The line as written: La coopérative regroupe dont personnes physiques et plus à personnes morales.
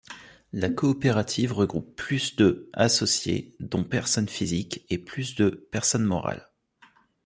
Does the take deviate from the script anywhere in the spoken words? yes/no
yes